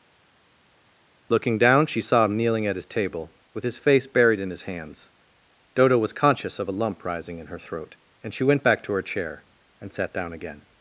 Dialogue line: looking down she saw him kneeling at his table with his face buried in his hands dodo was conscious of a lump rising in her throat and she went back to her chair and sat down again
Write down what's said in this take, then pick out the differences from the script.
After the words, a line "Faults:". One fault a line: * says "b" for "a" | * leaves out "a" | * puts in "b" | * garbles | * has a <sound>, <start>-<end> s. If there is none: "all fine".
looking down she saw him kneeling at his table with his face buried in his hands dodo was conscious of a lump rising in her throat and she went back to her chair and sat down again
Faults:
all fine